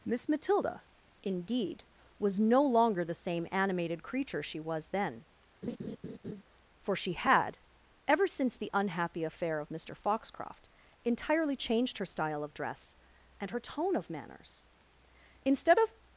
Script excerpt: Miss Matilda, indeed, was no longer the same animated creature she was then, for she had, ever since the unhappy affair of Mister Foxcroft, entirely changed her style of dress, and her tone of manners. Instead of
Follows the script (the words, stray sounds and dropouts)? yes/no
no